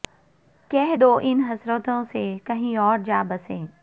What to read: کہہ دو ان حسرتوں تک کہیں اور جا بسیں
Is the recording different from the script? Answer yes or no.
yes